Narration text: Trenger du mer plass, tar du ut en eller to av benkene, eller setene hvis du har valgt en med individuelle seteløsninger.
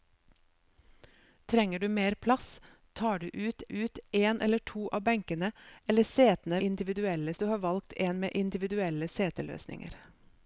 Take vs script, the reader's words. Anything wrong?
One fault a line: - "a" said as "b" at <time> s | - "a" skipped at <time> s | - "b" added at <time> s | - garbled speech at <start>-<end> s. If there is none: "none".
- "ut" added at 3.7 s
- "hvis" said as "individuelle" at 6.6 s